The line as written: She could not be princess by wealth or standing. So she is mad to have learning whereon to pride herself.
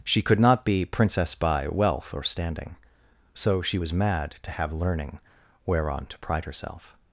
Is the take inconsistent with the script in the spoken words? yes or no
yes